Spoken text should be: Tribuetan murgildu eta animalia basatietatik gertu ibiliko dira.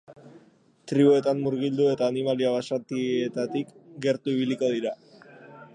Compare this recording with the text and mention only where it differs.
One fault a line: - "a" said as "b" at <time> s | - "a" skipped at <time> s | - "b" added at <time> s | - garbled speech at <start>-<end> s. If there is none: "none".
none